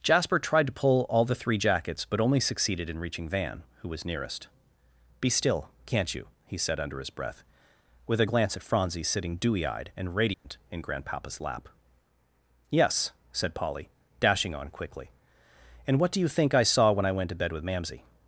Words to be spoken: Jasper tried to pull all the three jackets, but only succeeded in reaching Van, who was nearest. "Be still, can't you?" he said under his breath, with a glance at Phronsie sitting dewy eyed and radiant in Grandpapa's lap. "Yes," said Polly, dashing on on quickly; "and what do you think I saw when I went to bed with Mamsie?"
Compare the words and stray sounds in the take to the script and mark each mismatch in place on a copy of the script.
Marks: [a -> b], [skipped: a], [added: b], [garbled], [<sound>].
Jasper tried to pull all the three jackets, but only succeeded in reaching Van, who was nearest. "Be still, can't you?" he said under his breath, with a glance at Phronsie sitting dewy eyed and radiant [dropout] in Grandpapa's lap. "Yes," said Polly, dashing on [skipped: on] quickly; "and what do you think I saw when I went to bed with Mamsie?"